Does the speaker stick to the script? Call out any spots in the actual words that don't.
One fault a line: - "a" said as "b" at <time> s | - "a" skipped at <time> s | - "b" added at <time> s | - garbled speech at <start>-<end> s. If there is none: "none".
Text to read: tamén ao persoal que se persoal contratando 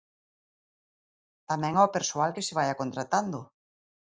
- "persoal" said as "vaia" at 2.6 s